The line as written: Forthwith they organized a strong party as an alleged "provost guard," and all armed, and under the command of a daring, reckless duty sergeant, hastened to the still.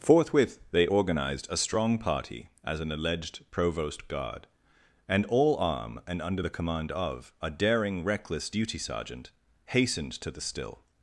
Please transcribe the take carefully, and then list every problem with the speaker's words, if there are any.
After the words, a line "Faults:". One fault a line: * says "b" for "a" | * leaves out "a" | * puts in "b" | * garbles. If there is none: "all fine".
Forthwith they organized a strong party as an alleged "provost guard," and all arm, and under the command of a daring, reckless duty sergeant, hastened to the still.
Faults:
* says "arm" for "armed"